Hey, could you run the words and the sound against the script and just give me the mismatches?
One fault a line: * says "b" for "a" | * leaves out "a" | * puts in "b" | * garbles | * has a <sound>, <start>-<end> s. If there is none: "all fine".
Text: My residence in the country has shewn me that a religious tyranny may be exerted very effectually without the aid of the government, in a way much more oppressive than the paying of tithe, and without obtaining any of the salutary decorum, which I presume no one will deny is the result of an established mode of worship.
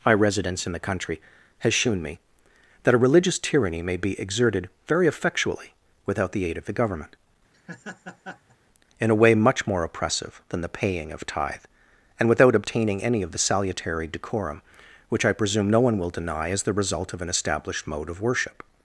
* has a laugh, 7.5-8.6 s